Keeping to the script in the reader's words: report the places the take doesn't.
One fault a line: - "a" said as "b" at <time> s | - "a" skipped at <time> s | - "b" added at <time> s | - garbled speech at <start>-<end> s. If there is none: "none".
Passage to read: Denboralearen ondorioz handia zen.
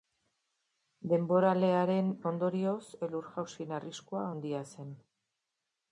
- "elur jausien arriskua" added at 3.1 s